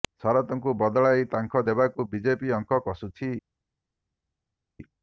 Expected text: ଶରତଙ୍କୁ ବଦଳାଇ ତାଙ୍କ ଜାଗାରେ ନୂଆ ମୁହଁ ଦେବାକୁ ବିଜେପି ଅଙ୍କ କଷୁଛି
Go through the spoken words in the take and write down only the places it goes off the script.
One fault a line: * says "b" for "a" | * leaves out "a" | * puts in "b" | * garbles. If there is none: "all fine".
* leaves out "ଜାଗାରେ ନୂଆ ମୁହଁ"